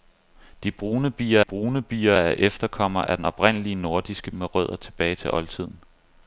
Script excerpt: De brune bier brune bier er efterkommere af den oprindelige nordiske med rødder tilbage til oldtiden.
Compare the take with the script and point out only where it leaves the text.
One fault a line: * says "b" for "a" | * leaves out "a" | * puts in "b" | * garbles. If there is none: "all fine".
all fine